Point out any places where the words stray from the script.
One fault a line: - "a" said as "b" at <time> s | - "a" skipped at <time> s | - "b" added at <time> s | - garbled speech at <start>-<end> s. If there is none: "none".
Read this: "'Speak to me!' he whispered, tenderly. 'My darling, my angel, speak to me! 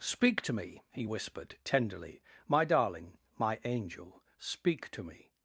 none